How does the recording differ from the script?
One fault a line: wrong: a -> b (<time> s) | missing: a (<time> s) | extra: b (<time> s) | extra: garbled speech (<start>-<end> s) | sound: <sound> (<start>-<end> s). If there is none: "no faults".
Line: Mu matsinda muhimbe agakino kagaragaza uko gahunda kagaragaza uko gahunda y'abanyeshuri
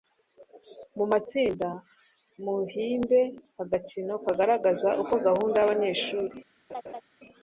missing: kagaragaza uko gahunda (5.5 s)
sound: laugh (6.7-7.0 s)